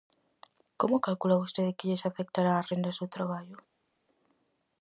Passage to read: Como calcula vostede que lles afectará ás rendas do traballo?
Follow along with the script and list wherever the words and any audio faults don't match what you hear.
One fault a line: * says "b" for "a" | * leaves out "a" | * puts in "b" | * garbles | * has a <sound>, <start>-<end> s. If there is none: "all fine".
all fine